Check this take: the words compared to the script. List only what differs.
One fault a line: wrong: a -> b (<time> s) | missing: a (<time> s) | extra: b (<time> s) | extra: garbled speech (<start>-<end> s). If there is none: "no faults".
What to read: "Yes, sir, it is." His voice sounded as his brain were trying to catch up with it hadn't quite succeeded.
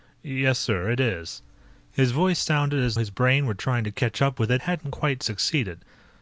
no faults